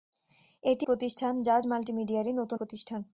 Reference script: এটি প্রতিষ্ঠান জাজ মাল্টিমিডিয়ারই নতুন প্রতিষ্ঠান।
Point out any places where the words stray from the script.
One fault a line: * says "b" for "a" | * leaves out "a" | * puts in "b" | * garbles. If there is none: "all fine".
all fine